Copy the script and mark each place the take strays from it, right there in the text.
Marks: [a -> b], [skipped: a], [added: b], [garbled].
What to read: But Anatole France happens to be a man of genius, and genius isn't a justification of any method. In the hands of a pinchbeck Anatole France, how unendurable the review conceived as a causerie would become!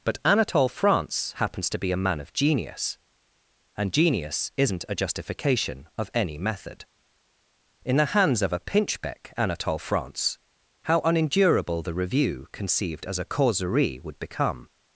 But Anatole France happens to be a man of genius, and genius isn't a justification of any method. In the hands of a pinchbeck Anatole France, how unendurable the review conceived as a causerie would become!